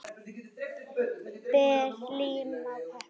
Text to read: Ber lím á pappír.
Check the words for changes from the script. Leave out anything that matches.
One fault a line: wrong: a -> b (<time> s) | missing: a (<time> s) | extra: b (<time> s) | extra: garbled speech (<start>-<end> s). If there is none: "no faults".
no faults